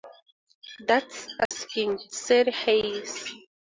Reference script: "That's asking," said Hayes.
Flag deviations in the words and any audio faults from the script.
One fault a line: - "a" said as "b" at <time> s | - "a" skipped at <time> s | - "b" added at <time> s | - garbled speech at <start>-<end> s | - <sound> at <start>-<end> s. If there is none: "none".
- dropout at 1.5-1.5 s